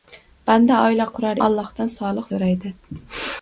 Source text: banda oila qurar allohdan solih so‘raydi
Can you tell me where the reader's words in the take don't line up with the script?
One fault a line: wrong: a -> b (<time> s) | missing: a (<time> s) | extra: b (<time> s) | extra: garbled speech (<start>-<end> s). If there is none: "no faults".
no faults